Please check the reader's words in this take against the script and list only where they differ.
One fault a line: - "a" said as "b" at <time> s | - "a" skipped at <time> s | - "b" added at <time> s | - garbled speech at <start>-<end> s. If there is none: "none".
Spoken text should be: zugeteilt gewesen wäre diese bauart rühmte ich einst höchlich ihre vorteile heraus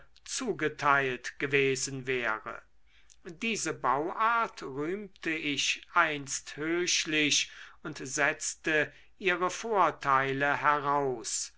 - "und setzte" added at 7.8 s